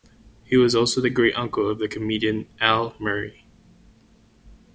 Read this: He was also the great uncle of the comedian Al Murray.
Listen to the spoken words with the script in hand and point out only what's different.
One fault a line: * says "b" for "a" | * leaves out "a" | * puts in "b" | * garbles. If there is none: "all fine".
all fine